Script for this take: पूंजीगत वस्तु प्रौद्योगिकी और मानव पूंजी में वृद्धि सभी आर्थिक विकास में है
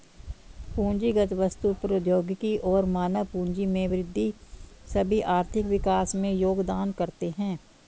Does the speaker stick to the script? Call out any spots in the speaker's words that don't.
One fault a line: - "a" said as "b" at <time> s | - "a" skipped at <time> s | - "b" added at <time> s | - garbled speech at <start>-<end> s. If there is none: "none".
- "योगदान करते" added at 6.3 s